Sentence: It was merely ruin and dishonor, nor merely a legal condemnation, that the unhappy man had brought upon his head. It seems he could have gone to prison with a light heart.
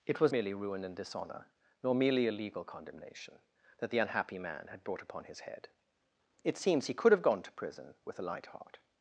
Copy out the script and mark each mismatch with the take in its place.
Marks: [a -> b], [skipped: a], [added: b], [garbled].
It was merely ruin and dishonor, nor merely a legal condemnation, that the unhappy man had brought upon his head. It seems he could have gone to prison with a light heart.